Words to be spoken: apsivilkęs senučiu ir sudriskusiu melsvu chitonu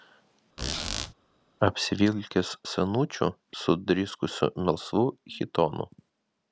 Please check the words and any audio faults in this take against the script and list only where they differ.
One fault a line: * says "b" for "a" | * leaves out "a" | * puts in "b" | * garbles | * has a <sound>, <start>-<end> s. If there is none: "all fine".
* has a squeak, 0.6-1.1 s
* leaves out "ir"